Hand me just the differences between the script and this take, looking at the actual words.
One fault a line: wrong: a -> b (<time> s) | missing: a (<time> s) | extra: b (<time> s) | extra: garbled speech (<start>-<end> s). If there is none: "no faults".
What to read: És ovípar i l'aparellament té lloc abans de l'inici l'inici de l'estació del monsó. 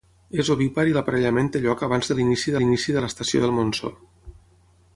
no faults